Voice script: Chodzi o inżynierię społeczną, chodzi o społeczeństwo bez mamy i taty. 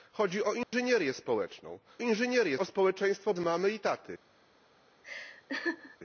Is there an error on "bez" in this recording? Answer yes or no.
yes